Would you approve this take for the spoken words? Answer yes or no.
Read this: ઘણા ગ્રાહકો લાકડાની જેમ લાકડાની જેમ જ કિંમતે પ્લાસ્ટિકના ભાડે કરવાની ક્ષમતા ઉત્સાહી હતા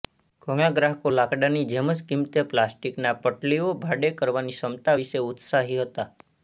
no